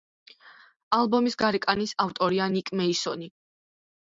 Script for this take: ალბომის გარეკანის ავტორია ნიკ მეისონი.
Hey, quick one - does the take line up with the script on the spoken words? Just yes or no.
yes